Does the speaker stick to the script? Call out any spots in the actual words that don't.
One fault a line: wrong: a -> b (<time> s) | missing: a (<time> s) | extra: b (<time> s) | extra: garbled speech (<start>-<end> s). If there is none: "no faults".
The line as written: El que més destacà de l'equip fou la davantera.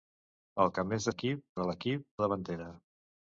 wrong: destacà -> l'equip (1.1 s)
missing: fou (2.1 s)